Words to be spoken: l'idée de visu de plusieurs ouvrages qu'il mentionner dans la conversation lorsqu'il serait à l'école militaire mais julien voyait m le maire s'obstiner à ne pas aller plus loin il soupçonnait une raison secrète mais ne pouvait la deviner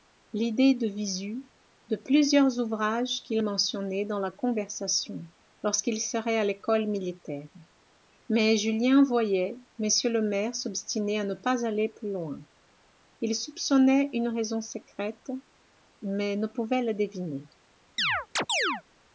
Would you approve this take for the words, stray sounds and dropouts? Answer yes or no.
no